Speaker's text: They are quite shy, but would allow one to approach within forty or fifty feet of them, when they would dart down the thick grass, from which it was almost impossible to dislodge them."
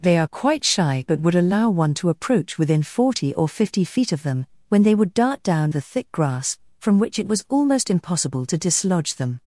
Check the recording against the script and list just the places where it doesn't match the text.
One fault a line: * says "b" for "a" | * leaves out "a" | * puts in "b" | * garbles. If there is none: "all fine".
all fine